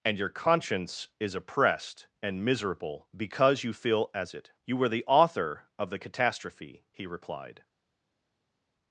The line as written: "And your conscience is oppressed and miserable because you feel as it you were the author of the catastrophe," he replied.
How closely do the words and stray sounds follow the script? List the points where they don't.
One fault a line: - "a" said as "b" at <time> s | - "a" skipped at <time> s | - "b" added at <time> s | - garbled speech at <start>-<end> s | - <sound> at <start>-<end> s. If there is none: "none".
none